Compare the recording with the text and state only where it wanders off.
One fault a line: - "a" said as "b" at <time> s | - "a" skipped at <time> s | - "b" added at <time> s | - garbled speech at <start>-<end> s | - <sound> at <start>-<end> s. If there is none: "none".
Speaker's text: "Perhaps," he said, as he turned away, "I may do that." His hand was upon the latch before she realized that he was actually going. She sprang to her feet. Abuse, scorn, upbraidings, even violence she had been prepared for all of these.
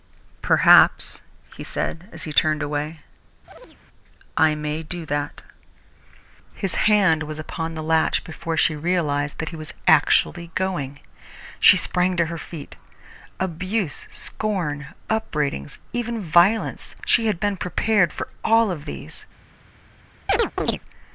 - chirp at 3.5-3.8 s
- chirp at 20.3-20.8 s